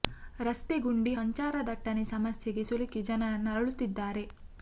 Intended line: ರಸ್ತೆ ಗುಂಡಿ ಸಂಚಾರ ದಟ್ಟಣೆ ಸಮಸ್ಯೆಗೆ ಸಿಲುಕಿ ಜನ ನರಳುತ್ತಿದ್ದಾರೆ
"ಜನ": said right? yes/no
yes